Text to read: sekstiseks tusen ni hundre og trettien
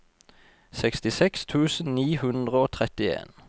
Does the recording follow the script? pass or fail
pass